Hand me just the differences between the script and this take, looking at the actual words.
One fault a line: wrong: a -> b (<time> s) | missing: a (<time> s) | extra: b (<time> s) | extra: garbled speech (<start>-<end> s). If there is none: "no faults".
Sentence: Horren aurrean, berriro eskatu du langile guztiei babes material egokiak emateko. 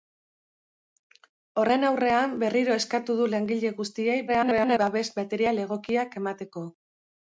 extra: garbled speech (4.3-4.8 s)